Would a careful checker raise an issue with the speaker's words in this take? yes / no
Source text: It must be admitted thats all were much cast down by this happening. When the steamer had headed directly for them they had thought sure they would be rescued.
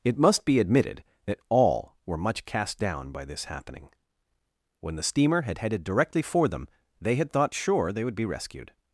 yes